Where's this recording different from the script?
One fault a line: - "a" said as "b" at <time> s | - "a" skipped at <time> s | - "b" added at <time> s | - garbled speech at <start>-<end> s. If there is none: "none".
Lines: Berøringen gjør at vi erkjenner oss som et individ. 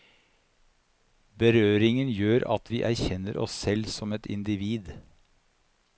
- "selv" added at 3.6 s